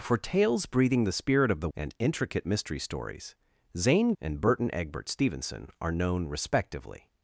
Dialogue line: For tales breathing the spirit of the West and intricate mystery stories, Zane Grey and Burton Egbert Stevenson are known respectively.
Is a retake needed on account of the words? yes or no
yes